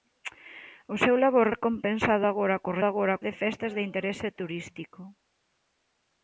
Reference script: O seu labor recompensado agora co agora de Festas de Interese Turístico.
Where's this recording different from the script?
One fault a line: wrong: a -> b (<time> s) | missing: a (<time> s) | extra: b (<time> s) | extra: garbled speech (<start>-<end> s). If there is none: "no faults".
no faults